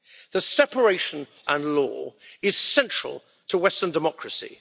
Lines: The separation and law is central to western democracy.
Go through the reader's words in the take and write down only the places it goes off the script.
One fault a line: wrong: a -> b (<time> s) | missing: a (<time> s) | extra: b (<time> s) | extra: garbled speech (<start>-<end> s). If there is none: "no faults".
no faults